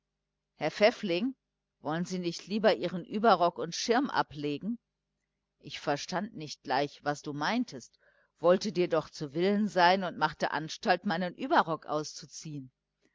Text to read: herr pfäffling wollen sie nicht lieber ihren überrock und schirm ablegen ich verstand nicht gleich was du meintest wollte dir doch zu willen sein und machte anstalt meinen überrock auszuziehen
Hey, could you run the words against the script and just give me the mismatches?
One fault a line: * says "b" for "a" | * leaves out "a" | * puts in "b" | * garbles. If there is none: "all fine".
all fine